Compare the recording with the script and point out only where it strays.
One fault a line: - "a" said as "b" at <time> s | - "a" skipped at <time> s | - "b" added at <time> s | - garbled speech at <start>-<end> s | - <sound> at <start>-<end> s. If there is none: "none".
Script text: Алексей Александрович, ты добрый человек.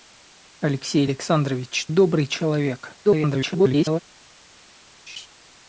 - "ты" skipped at 1.9 s
- garbled speech at 3.0-4.0 s
- laugh at 5.1-5.3 s